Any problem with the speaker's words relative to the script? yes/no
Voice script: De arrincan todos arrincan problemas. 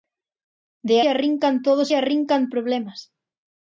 no